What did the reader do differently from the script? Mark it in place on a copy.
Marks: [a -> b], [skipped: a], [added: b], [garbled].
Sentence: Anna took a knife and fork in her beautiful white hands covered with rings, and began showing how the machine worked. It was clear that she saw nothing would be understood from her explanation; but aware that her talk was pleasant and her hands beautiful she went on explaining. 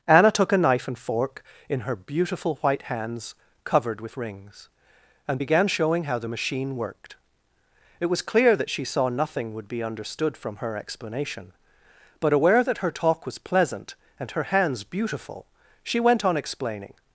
Anna took a knife and fork in her beautiful white hands covered with rings, and began showing how the machine worked. It was clear that she saw nothing would be understood from her explanation; but aware that her talk was pleasant and her hands beautiful she went on explaining.